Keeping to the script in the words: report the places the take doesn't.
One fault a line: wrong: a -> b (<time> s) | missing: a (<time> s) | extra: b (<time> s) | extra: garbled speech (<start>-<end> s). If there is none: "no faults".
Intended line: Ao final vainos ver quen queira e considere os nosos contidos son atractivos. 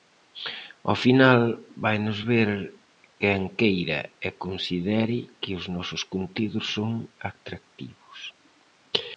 extra: que (5.4 s)